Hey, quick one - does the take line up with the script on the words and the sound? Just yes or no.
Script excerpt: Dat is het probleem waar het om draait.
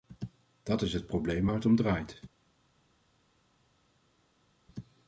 yes